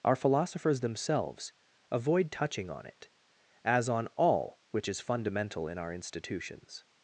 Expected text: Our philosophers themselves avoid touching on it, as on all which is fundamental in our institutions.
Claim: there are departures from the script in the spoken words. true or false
false